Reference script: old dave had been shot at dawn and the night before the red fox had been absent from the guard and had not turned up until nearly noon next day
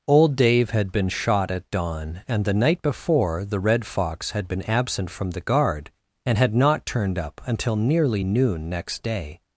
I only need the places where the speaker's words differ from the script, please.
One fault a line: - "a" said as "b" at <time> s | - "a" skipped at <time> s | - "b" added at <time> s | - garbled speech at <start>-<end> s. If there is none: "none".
none